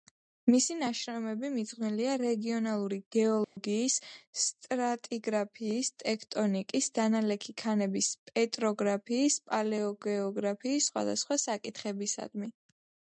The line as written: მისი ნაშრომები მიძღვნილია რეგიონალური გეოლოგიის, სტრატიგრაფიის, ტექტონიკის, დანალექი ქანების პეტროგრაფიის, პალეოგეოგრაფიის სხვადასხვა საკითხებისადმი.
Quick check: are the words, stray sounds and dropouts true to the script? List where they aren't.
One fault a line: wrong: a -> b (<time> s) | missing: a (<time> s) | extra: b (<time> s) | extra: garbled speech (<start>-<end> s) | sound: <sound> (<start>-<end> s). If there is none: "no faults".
sound: dropout (3.4-3.6 s)